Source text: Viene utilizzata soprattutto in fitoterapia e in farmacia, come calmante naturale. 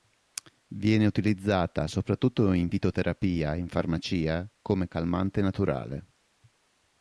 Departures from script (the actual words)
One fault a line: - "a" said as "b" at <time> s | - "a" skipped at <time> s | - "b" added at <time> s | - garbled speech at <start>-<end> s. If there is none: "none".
none